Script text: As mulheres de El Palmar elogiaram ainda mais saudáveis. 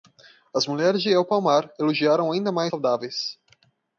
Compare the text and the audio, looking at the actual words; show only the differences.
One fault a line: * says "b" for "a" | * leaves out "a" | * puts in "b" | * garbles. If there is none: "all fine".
all fine